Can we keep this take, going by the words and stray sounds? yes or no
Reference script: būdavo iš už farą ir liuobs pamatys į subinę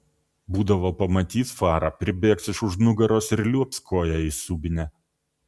no